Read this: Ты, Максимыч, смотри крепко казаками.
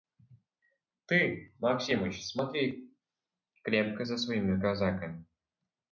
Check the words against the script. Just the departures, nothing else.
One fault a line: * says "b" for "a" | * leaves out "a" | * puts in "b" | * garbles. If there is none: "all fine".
* puts in "за своими"